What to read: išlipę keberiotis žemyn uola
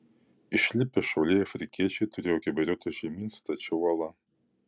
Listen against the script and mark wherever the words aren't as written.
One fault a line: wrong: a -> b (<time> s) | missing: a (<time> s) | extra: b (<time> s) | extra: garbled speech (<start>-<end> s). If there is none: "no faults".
extra: šauliai afrikiečiai turėjo (1.1 s)
extra: stačia (3.4 s)